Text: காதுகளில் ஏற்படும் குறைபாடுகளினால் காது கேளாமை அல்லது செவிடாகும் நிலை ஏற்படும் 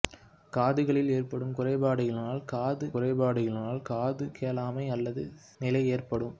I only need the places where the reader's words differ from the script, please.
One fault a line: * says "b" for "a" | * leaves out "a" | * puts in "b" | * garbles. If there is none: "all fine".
* puts in "குறைபாடுகளினால் காது"
* leaves out "செவிடாகும்"